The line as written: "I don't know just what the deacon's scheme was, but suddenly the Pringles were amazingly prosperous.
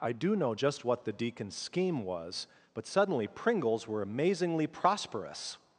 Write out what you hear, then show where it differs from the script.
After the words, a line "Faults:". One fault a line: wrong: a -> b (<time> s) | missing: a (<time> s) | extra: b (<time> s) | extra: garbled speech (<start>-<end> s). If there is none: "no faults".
"I do know just what the deacon's scheme was, but suddenly Pringles were amazingly prosperous.
Faults:
wrong: don't -> do (0.1 s)
missing: the (3.3 s)